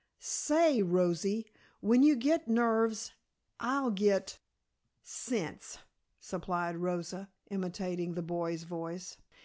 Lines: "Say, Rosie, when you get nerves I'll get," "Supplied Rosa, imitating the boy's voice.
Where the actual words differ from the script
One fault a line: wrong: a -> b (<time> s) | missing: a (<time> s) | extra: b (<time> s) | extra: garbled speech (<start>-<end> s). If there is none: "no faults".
extra: Sense (5.0 s)